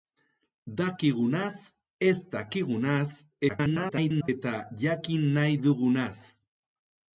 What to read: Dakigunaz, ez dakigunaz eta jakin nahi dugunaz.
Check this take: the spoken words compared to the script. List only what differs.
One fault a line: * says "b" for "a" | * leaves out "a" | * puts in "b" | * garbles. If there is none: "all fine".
* garbles